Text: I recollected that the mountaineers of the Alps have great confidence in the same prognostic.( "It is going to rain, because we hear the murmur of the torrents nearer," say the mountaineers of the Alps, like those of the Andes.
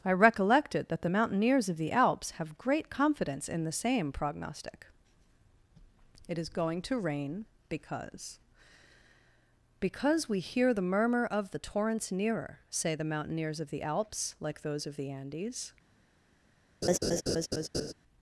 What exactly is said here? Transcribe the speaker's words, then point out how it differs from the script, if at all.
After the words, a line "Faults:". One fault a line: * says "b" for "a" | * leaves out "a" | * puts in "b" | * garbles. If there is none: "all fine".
I recollected that the mountaineers of the Alps have great confidence in the same prognostic.( "It is going to rain, because because we hear the murmur of the torrents nearer," say the mountaineers of the Alps, like those of the Andes.
Faults:
* puts in "because"